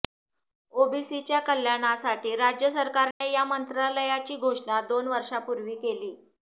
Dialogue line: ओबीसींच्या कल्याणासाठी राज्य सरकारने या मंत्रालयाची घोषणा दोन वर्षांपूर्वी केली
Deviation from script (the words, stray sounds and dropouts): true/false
true